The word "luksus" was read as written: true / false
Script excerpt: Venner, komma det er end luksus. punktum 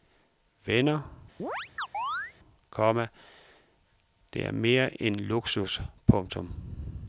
true